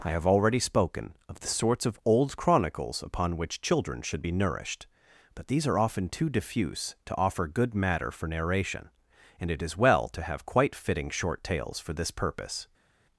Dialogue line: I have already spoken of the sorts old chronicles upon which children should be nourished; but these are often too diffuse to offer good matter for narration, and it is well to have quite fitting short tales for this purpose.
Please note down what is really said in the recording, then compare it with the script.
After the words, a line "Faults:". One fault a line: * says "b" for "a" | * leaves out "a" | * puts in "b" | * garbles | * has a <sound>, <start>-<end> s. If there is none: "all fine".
I have already spoken of the sorts of old chronicles upon which children should be nourished; but these are often too diffuse to offer good matter for narration, and it is well to have quite fitting short tales for this purpose.
Faults:
* puts in "of"